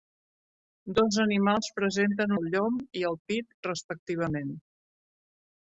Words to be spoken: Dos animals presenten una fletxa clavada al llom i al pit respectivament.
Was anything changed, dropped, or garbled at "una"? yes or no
yes